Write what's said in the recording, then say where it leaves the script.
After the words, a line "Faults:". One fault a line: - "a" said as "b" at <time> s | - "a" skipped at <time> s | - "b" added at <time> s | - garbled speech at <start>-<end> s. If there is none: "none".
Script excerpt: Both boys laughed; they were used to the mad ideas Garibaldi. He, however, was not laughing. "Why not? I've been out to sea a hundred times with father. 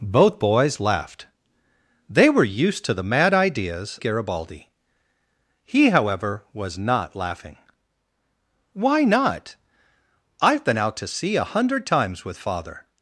Both boys laughed; they were used to the mad ideas Garibaldi. He, however, was not laughing. "Why not? I've been out to sea a hundred times with father.
Faults:
none